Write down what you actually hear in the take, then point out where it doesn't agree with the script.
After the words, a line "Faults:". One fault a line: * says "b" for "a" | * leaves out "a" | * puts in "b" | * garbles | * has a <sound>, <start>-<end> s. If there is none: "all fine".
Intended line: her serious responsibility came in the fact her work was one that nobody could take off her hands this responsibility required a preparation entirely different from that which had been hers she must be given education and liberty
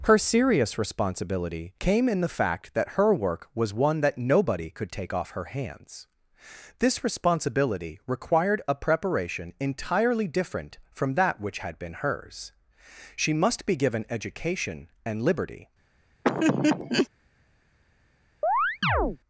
her serious responsibility came in the fact that her work was one that nobody could take off her hands this responsibility required a preparation entirely different from that which had been hers she must be given education and liberty
Faults:
* puts in "that"
* has a laugh, 16.2-17.1 s
* has a chirp, 18.4-19.2 s